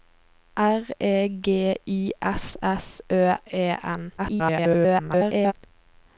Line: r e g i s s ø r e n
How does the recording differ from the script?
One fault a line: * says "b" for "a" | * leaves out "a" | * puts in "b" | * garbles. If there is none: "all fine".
* leaves out "r"
* garbles